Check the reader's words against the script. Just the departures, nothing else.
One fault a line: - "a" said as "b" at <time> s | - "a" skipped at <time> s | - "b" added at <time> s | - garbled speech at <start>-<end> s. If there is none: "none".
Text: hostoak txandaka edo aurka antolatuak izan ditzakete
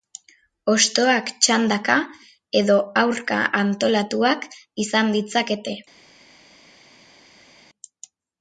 none